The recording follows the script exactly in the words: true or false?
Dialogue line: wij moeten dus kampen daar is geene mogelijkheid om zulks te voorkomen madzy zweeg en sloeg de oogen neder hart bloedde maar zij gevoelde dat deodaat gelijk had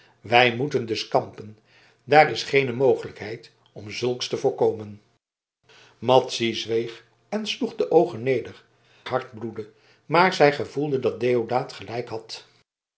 true